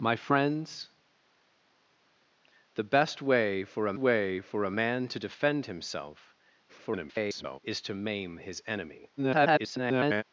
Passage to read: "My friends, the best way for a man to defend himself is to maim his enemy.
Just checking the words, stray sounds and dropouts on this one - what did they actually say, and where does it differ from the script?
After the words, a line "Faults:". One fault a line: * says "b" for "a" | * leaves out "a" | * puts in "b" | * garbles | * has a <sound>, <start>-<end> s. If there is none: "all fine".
"My friends, the best way for a way for a man to defend himself [garbled] is to maim his enemy. [garbled]
Faults:
* puts in "way for a"
* garbles
* garbles